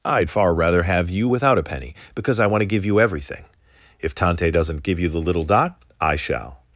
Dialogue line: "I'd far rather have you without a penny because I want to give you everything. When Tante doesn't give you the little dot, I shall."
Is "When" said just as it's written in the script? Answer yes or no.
no